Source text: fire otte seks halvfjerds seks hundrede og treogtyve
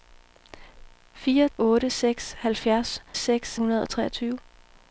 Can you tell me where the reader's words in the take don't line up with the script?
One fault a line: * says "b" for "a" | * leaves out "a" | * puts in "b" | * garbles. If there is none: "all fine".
all fine